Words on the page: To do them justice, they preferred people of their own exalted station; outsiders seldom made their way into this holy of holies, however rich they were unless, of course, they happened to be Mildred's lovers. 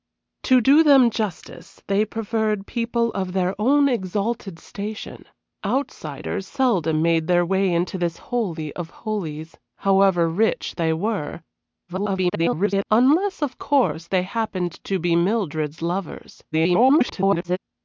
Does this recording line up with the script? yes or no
no